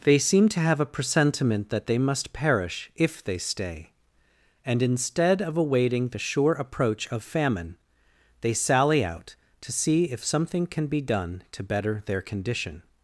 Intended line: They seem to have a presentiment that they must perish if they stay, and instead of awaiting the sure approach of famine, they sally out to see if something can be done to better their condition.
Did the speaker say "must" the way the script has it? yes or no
yes